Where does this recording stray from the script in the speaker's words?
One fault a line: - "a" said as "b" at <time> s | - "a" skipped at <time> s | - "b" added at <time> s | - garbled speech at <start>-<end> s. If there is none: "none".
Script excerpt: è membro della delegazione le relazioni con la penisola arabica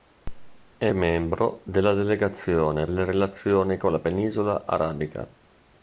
none